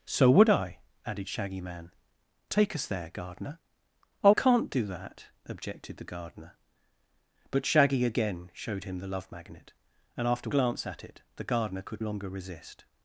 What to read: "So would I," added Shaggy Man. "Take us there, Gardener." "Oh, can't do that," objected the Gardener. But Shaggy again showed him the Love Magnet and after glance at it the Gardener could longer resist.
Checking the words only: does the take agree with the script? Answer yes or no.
yes